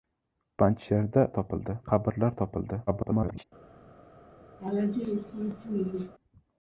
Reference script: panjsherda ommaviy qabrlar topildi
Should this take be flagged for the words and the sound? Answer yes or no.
yes